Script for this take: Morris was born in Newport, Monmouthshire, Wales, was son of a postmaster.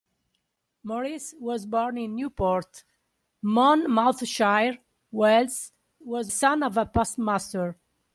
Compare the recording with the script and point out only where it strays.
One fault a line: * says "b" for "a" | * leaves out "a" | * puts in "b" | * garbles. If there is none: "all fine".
all fine